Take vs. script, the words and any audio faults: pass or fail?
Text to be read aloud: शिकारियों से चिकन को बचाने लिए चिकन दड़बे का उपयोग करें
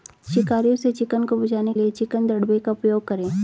pass